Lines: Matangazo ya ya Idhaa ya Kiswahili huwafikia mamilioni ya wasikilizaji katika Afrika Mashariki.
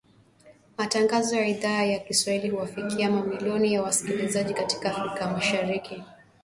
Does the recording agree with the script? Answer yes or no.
no